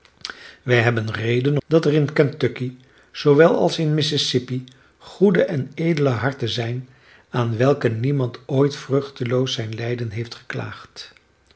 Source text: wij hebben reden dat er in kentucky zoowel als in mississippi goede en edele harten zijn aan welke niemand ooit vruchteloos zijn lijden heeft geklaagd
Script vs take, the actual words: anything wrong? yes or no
no